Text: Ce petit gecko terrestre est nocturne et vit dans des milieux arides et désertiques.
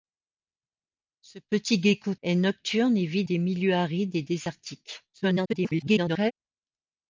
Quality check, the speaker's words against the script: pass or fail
fail